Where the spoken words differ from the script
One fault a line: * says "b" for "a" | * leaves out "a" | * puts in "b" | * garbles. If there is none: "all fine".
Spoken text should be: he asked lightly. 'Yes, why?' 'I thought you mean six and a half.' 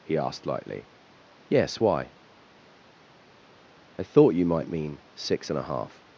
* puts in "might"